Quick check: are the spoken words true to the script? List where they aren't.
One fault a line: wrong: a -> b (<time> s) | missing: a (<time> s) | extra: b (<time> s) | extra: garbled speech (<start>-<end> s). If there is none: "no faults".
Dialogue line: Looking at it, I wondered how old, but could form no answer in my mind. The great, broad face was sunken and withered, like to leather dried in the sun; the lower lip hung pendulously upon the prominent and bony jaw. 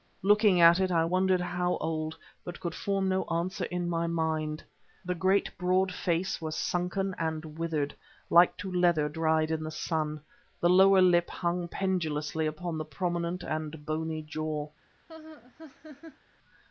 no faults